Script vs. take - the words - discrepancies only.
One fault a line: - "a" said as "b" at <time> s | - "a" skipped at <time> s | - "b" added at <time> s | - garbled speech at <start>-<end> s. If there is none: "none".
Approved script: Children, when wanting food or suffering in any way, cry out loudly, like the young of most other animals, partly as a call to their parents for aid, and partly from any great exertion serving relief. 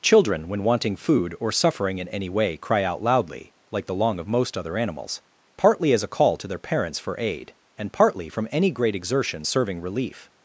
- "young" said as "long" at 3.9 s